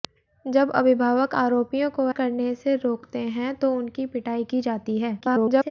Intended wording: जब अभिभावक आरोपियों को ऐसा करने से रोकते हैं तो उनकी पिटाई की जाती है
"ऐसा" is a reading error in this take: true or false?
true